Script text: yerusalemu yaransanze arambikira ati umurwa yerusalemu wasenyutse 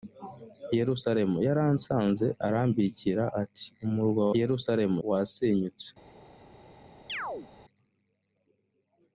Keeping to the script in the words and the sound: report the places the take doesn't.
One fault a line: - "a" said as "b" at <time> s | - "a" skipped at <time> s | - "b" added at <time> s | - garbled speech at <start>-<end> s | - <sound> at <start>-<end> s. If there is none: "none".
- chirp at 7.1-7.5 s